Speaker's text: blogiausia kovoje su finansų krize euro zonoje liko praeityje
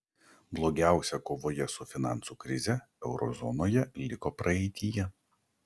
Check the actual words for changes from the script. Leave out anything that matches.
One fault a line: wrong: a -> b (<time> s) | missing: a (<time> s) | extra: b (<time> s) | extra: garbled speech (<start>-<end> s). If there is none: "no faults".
no faults